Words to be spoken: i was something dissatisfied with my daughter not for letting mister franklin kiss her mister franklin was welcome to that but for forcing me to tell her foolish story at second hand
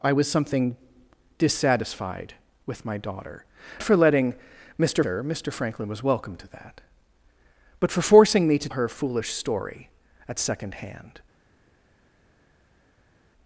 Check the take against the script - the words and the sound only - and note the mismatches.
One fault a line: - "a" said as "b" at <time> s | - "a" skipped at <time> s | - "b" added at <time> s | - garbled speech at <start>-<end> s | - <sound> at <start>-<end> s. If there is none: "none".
- "not" skipped at 3.5 s
- "franklin kiss" skipped at 5.0 s
- "tell" skipped at 8.7 s